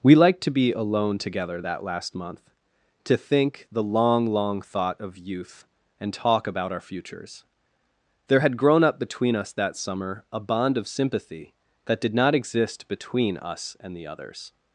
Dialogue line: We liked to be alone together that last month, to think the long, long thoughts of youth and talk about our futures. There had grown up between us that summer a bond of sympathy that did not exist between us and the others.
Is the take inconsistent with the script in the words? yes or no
yes